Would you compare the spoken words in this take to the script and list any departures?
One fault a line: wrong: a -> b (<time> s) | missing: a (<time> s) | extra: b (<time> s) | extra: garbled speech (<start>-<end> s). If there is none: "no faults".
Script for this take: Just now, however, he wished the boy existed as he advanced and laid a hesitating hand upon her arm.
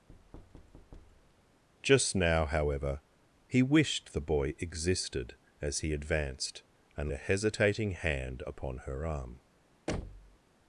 missing: laid (7.1 s)